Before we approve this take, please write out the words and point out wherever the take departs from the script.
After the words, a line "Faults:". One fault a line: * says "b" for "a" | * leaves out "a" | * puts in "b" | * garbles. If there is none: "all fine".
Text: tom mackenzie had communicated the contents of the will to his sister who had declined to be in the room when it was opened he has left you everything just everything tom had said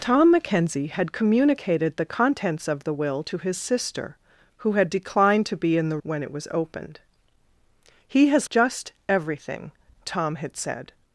tom mackenzie had communicated the contents of the will to his sister who had declined to be in the when it was opened he has just everything tom had said
Faults:
* leaves out "room"
* leaves out "left you everything"